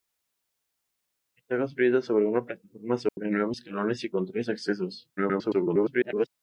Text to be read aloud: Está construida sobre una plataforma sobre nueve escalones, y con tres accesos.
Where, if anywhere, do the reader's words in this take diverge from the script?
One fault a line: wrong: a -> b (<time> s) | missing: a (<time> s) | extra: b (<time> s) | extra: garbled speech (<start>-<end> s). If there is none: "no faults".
extra: garbled speech (5.2-6.3 s)